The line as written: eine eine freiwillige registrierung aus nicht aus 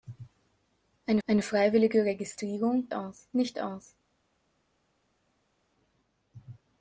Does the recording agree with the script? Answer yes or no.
yes